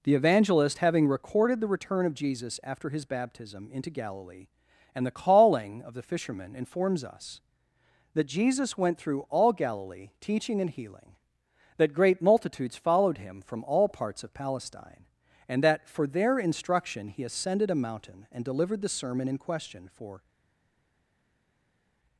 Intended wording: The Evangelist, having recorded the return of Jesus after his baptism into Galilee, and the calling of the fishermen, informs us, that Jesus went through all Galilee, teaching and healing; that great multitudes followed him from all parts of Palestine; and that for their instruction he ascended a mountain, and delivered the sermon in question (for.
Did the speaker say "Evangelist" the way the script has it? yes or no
yes